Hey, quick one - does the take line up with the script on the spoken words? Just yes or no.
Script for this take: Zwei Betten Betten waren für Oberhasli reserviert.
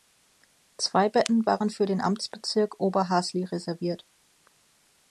no